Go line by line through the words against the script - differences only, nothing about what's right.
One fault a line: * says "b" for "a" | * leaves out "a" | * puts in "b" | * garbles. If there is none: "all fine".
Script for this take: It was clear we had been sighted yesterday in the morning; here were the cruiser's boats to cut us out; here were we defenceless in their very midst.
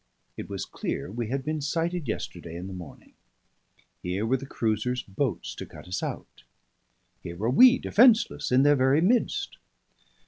all fine